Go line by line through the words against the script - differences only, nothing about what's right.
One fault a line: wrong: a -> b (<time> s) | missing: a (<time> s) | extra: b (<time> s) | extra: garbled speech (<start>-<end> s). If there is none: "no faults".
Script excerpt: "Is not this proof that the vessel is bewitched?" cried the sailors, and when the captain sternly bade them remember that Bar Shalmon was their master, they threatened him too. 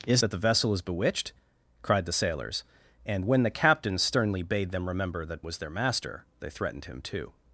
missing: not this proof (0.2 s)
missing: Bar Shalmon (5.5 s)